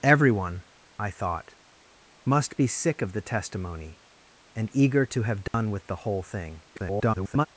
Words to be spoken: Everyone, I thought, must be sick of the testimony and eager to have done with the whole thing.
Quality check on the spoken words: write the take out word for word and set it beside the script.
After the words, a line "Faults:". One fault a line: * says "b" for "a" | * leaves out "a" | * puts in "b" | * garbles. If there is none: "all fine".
Everyone, I thought, must be sick of the testimony and eager to have done with the whole thing. [garbled]
Faults:
* garbles